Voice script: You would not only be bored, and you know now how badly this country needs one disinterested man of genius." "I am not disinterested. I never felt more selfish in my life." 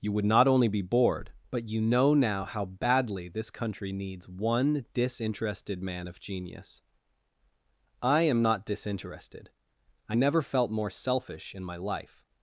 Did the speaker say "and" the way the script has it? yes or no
no